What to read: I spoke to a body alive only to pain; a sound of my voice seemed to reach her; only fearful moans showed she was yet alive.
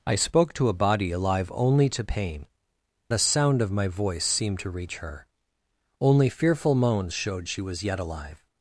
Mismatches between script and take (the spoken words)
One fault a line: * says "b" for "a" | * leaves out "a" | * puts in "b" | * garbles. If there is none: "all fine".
all fine